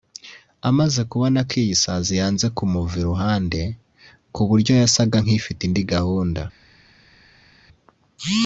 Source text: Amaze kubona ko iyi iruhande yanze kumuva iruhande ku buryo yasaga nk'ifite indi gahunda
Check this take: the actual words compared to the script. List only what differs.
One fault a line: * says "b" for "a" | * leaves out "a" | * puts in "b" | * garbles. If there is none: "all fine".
* says "sazi" for "iruhande"